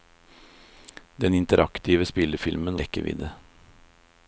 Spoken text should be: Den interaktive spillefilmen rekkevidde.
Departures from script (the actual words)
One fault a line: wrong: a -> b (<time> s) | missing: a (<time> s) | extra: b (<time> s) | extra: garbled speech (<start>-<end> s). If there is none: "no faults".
no faults